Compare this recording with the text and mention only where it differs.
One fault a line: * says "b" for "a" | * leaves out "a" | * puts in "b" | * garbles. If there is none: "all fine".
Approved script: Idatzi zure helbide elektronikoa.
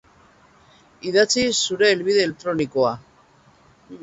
all fine